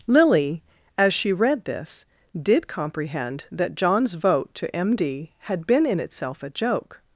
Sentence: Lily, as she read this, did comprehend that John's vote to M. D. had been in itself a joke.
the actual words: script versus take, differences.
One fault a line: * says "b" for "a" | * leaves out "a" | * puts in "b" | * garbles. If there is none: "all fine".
all fine